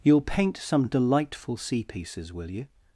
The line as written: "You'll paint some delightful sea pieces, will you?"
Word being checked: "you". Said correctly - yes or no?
yes